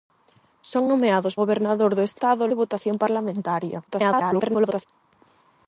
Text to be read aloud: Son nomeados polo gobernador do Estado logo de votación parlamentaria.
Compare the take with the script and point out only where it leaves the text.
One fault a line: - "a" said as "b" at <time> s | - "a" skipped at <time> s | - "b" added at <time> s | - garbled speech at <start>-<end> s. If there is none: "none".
- "polo" skipped at 1.3 s
- "logo" skipped at 2.4 s
- garbled speech at 3.9-4.9 s